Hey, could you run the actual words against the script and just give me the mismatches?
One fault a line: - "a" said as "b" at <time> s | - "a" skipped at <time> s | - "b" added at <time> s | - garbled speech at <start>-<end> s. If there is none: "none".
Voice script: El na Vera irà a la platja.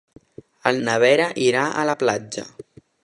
none